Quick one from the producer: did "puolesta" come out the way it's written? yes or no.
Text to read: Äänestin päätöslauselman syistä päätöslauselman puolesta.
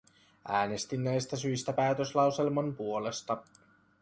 yes